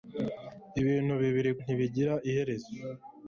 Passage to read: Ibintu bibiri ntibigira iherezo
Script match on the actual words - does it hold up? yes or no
yes